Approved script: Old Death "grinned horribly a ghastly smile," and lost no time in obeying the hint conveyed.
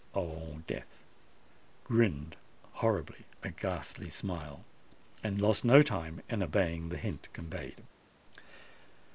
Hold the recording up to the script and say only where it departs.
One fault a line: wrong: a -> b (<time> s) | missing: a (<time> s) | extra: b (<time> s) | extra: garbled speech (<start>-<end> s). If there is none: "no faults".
no faults